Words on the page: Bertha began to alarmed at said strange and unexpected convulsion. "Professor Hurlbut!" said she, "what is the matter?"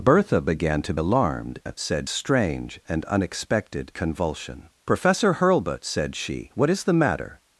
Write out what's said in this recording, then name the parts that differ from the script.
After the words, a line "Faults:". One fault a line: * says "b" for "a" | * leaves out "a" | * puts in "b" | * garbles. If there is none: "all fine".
Bertha began to alarmed at said strange and unexpected convulsion. "Professor Hurlbut!" said she, "what is the matter?"
Faults:
all fine